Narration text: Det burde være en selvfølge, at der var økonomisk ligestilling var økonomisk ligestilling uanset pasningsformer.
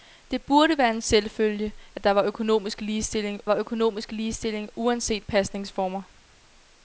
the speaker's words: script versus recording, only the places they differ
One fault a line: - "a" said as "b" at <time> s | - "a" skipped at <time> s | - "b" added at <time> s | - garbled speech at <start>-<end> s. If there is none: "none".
none